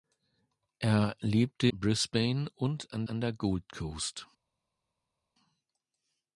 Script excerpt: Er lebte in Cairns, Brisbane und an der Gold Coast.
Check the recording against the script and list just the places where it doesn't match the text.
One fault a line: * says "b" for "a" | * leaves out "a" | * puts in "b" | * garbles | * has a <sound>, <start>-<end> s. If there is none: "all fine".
* leaves out "in Cairns"
* puts in "an"